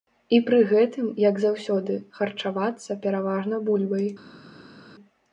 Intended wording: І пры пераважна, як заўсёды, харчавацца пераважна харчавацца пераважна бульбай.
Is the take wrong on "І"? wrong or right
right